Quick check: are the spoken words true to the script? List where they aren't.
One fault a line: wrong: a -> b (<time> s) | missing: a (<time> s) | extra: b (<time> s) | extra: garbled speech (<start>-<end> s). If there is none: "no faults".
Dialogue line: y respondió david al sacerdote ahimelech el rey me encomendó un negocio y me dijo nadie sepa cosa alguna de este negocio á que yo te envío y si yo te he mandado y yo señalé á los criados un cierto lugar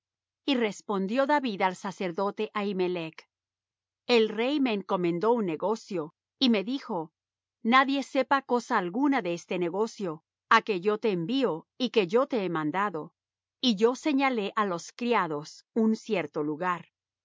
wrong: si -> que (11.9 s)